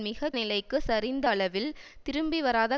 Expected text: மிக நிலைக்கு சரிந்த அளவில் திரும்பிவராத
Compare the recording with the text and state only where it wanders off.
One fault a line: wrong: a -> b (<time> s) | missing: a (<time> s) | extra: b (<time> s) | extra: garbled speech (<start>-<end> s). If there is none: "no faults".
no faults